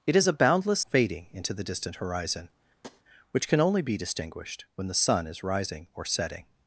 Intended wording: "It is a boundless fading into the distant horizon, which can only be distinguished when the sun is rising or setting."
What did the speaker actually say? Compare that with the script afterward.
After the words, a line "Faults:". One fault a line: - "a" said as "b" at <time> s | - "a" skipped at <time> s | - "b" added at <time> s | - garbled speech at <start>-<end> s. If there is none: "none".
"It is a boundless fading into the distant horizon, which can only be distinguished when the sun is rising or setting."
Faults:
none